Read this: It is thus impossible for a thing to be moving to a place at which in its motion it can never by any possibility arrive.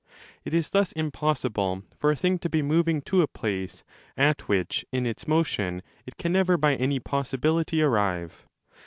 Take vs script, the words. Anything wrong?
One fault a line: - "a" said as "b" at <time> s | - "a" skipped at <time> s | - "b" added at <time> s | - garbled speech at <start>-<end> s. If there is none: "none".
none